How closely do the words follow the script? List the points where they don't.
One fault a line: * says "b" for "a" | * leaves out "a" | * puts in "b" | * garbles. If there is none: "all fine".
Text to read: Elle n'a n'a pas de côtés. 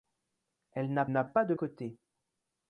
all fine